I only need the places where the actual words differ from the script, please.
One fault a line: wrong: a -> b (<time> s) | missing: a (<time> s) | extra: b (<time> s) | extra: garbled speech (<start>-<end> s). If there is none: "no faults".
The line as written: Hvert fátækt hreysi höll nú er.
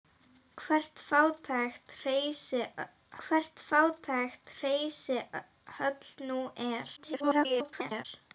extra: hvert fátækt hreysi (3.2 s)
extra: garbled speech (7.0-8.1 s)